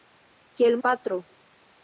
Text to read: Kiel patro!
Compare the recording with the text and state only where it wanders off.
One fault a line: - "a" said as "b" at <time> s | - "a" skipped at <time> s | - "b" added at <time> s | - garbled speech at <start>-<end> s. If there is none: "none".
none